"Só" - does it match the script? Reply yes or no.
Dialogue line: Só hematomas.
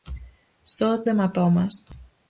yes